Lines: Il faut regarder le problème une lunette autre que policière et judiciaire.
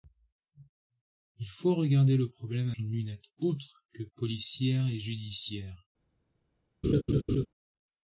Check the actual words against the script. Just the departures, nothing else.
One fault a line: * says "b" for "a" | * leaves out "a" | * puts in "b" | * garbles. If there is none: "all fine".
all fine